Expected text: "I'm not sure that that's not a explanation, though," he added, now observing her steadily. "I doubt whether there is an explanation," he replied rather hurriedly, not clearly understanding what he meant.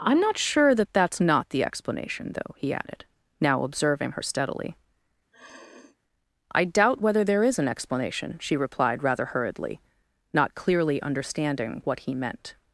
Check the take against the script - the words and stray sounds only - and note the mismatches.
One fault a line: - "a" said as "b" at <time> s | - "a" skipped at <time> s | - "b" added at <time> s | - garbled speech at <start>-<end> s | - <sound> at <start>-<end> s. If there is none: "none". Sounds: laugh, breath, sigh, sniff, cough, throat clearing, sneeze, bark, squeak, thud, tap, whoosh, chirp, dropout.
- "a" said as "the" at 1.5 s
- sniff at 5.3-6.0 s
- "he" said as "she" at 8.4 s